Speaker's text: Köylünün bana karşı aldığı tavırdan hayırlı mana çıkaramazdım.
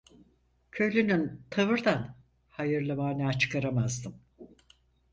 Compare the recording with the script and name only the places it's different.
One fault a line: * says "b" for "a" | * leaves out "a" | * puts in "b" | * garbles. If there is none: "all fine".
* leaves out "bana karşı aldığı"